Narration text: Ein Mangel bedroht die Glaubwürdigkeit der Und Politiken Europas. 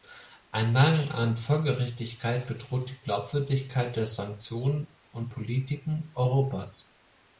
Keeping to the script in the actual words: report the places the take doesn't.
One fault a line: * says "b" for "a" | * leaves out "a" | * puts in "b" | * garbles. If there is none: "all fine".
* puts in "an Folgerichtigkeit"
* puts in "Sanktionen"